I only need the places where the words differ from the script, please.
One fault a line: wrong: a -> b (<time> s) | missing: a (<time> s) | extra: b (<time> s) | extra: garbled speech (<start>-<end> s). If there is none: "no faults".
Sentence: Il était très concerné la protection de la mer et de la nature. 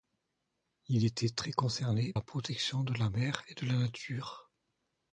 no faults